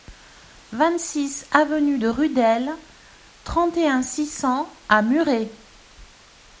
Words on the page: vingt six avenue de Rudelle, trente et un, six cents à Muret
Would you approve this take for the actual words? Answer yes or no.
yes